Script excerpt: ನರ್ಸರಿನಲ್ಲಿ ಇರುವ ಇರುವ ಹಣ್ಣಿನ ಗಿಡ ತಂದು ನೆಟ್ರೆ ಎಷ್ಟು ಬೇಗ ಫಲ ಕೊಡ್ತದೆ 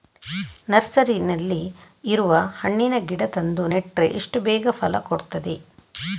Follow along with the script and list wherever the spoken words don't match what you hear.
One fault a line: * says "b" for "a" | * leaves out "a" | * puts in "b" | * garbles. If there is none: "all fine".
* leaves out "ಇರುವ"